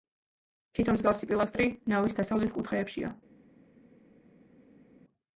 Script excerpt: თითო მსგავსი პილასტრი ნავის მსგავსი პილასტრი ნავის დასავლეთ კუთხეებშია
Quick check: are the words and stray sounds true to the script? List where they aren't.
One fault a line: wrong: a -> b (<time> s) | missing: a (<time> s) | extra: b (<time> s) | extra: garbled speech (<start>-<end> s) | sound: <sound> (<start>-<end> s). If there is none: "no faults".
missing: მსგავსი პილასტრი ნავის (2.2 s)